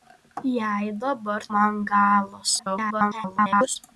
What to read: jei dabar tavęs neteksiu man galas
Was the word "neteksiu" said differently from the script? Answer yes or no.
yes